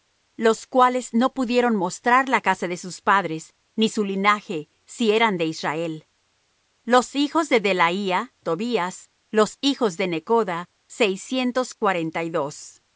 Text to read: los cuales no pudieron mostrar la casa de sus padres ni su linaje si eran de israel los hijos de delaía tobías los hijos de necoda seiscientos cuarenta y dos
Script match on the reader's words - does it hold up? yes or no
yes